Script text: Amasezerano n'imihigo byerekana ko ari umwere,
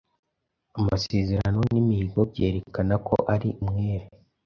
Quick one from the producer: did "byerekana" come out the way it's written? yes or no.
yes